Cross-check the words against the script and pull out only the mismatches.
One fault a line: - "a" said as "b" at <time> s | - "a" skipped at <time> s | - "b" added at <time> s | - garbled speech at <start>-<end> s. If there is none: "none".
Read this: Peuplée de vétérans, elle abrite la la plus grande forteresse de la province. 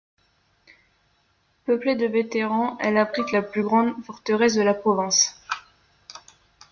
- "la" skipped at 3.4 s